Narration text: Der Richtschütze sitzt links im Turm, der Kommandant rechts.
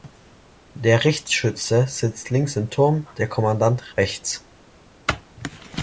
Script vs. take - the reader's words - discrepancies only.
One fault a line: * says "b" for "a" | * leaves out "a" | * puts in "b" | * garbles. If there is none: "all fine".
all fine